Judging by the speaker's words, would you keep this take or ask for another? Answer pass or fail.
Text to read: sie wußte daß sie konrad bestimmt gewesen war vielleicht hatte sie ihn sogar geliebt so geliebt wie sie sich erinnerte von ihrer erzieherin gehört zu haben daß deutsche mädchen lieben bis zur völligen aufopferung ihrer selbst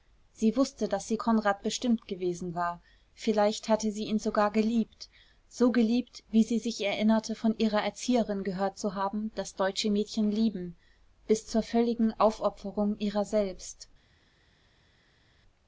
pass